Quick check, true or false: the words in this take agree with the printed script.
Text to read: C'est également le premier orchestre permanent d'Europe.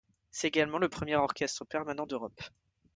true